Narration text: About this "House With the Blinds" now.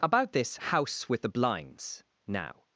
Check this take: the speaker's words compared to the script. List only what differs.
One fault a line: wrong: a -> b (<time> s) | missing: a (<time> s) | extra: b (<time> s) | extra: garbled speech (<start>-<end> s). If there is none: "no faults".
no faults